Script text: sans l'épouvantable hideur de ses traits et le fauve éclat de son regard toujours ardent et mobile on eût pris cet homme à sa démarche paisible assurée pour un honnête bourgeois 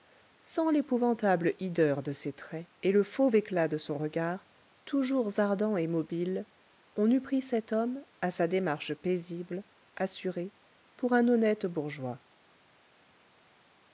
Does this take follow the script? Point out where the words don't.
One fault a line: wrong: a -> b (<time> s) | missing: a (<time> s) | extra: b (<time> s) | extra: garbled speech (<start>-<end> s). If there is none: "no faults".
no faults